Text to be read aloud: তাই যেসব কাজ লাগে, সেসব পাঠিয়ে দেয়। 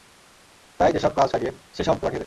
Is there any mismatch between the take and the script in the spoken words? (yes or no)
no